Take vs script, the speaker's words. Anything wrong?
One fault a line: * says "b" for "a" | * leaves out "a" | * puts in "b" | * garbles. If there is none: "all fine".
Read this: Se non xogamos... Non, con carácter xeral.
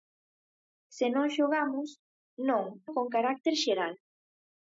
all fine